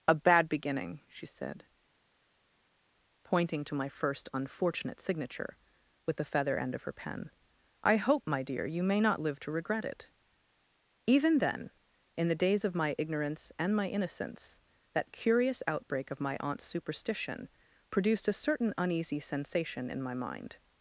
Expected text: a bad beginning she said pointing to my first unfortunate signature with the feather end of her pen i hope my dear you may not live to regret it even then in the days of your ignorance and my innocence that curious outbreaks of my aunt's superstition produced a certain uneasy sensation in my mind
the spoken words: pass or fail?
fail